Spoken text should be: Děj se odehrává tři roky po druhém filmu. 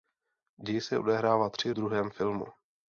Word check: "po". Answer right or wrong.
wrong